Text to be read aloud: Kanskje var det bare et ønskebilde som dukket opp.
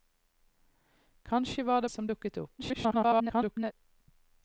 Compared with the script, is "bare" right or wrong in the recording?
wrong